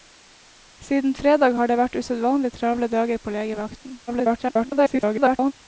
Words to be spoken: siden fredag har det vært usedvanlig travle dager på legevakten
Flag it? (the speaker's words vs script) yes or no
yes